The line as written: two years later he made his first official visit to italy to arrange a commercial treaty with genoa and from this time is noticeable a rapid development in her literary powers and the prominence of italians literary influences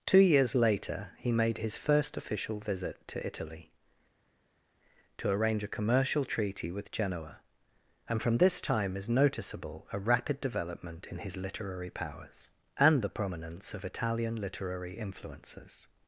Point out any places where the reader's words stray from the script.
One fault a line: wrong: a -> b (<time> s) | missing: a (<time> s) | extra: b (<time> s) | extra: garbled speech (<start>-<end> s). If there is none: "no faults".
wrong: her -> his (11.2 s)
wrong: italians -> italian (13.9 s)